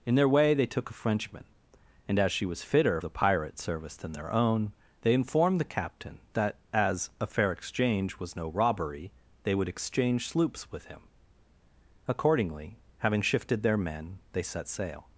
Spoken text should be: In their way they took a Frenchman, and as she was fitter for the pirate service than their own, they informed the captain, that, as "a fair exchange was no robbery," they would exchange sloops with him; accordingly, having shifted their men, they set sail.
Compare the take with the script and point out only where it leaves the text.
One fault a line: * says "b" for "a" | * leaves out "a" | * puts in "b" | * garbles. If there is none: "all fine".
* leaves out "for"